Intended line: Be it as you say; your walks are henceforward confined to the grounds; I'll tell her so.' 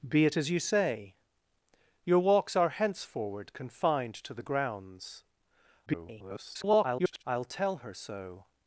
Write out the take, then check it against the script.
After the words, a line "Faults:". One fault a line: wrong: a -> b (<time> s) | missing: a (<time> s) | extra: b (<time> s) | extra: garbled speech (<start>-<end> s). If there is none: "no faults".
Be it as you say; your walks are henceforward confined to the grounds; [garbled] I'll tell her so.'
Faults:
extra: garbled speech (5.9-7.2 s)